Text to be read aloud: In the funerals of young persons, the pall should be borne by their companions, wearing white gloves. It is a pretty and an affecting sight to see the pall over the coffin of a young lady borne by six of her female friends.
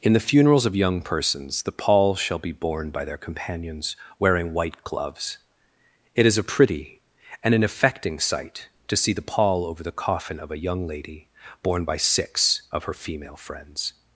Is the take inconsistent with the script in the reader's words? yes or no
yes